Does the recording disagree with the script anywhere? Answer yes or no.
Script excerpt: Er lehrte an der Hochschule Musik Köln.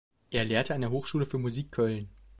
yes